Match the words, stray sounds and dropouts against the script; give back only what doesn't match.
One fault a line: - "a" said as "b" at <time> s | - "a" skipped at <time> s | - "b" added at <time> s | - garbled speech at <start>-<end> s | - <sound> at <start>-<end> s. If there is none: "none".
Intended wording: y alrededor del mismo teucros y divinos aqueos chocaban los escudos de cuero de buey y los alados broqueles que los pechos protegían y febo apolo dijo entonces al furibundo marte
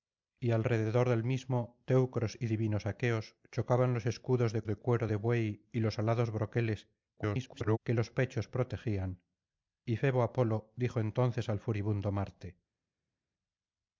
- "de" added at 4.6 s
- garbled speech at 7.2-7.8 s